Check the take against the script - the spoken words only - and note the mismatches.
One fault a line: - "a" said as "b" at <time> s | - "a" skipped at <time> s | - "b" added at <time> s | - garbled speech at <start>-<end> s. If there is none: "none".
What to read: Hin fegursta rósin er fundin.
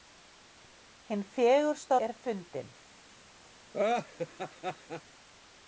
- "rósin" skipped at 2.0 s